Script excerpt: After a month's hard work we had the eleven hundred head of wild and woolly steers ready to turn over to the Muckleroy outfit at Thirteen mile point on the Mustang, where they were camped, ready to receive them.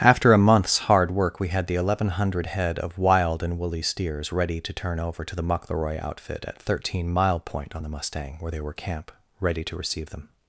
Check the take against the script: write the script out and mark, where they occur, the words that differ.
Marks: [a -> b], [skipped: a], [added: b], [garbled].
After a month's hard work we had the eleven hundred head of wild and woolly steers ready to turn over to the Muckleroy outfit at Thirteen mile point on the Mustang, where they were [camped, -> camp] ready to receive them.